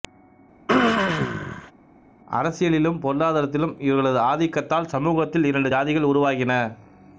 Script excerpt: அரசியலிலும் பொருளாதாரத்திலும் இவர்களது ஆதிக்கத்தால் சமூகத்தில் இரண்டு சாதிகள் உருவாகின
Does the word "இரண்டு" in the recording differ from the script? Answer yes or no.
no